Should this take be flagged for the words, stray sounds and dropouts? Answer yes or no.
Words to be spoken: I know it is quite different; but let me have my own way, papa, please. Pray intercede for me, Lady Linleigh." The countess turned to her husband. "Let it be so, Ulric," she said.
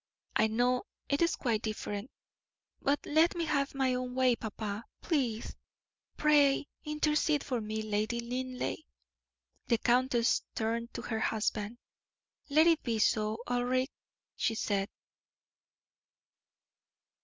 no